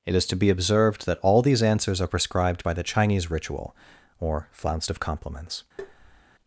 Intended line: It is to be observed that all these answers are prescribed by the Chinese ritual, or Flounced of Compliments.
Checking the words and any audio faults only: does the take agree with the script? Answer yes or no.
no